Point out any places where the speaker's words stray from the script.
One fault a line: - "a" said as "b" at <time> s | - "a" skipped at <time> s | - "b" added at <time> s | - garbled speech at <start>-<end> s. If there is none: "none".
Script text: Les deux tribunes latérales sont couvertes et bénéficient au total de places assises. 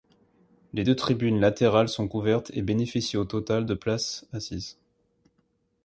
none